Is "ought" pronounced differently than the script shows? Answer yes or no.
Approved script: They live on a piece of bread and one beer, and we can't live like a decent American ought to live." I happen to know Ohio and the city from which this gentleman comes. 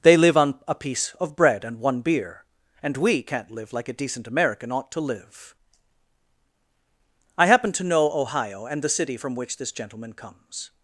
no